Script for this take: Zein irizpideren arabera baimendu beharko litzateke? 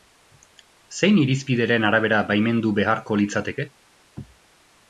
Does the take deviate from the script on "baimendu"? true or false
false